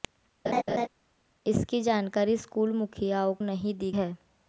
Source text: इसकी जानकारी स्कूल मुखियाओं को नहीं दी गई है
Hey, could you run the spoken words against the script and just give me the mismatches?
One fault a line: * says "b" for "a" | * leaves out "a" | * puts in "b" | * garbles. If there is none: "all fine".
* leaves out "को"
* leaves out "गई"